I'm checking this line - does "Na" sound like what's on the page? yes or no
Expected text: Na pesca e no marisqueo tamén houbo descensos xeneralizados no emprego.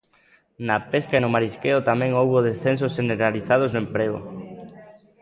yes